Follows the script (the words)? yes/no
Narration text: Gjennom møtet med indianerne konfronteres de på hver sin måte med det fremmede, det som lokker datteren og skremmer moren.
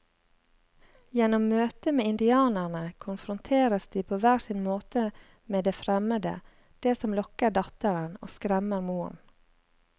yes